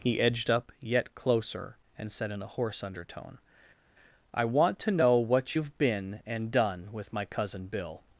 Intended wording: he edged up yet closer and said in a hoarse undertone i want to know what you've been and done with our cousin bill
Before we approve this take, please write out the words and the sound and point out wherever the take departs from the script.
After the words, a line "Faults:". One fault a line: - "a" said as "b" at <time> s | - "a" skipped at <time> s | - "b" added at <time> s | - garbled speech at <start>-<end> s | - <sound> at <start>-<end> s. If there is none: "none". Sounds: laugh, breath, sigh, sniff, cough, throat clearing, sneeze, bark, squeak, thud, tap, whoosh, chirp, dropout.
he edged up yet closer and said in a hoarse undertone i want to know what you've been and done with my cousin bill
Faults:
- "our" said as "my" at 7.1 s